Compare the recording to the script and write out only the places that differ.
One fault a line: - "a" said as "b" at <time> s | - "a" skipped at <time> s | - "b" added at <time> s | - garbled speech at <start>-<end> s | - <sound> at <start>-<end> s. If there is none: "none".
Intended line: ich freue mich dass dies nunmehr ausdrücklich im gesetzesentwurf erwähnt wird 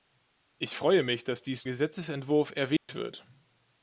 - "nunmehr ausdrücklich im" skipped at 1.7 s
- dropout at 2.8-2.9 s